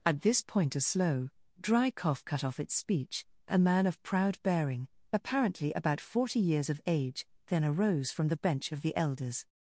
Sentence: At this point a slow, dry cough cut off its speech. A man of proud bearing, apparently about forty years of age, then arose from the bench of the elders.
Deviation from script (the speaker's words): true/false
false